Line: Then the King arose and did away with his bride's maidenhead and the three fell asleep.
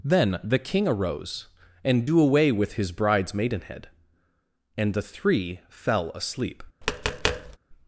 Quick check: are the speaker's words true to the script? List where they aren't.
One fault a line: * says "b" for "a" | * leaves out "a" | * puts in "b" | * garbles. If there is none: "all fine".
* says "do" for "did"